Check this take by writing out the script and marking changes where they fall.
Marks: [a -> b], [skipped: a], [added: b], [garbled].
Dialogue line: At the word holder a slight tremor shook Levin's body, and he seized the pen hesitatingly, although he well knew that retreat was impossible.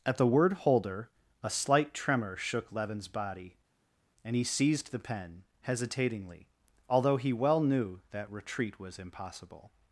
At the word holder a slight tremor shook Levin's body, and he seized the pen hesitatingly, although he well knew that retreat was impossible.